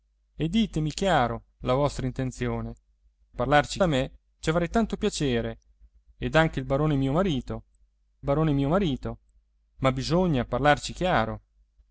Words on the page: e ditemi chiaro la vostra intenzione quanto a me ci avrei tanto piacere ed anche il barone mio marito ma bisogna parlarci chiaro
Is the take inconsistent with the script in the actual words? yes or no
yes